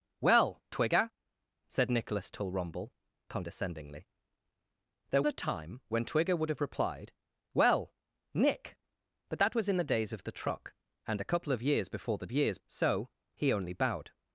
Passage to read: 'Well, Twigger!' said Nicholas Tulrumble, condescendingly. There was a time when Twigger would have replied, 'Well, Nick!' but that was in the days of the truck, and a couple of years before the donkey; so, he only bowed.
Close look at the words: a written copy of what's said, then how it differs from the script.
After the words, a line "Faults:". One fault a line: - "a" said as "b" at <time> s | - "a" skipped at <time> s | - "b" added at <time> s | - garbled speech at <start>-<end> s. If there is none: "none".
'Well, Twigger!' said Nicholas Tulrumble, condescendingly. There a time when Twigger would have replied, 'Well, Nick!' but that was in the days of the truck, and a couple of years before the years; so, he only bowed.
Faults:
- "was" skipped at 5.2 s
- "donkey" said as "years" at 12.3 s